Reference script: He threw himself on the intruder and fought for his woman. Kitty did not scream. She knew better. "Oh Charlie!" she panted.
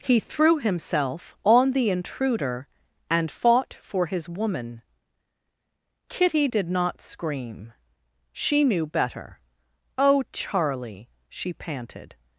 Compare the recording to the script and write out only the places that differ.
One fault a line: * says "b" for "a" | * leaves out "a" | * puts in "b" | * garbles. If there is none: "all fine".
all fine